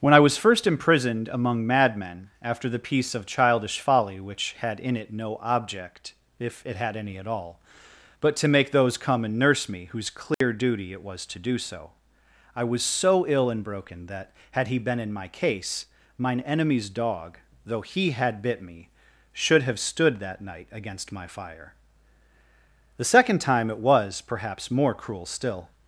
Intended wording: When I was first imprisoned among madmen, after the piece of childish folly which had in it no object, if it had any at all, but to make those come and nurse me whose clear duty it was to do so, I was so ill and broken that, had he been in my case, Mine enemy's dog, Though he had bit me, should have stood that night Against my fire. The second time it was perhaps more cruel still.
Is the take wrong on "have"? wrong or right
right